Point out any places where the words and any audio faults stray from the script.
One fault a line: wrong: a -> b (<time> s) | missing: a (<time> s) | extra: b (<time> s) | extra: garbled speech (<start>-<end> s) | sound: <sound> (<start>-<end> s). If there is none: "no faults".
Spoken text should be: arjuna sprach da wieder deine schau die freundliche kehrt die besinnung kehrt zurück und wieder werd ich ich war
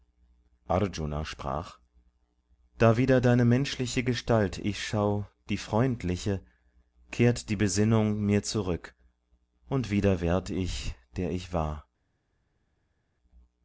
extra: menschliche gestalt ich (3.5 s)
wrong: kehrt -> mir (8.2 s)
extra: der (11.2 s)